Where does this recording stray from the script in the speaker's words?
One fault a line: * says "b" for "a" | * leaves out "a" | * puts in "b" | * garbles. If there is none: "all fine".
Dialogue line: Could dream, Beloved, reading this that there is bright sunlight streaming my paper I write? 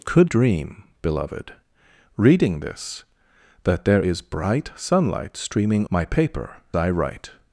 all fine